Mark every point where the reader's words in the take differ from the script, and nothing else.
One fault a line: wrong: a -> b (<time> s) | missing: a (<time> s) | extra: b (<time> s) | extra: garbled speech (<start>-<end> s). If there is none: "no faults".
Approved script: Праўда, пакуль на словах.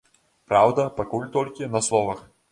extra: толькі (1.4 s)